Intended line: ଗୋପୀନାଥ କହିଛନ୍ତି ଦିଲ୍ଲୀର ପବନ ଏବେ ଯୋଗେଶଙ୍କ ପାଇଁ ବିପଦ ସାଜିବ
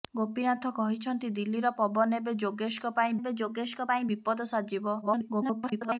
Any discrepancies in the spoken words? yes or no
yes